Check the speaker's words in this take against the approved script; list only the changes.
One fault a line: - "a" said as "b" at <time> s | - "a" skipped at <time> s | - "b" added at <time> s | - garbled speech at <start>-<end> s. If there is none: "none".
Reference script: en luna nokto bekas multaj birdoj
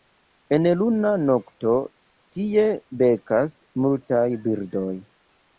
- "tie" added at 2.4 s